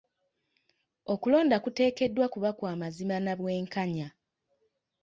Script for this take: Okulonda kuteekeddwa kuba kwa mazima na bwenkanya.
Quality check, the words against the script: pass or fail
pass